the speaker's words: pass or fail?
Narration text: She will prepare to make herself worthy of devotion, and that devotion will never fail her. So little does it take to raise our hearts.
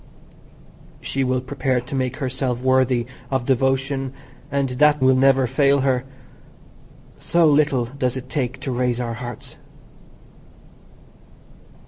fail